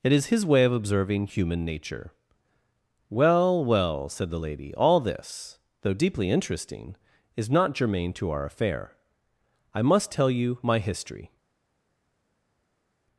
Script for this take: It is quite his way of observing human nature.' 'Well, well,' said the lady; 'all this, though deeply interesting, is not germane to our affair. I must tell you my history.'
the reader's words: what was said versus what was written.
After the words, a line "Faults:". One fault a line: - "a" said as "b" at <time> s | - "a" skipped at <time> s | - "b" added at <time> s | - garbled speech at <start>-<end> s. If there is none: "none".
It is his way of observing human nature.' 'Well, well,' said the lady; 'all this, though deeply interesting, is not germane to our affair. I must tell you my history.'
Faults:
- "quite" skipped at 0.3 s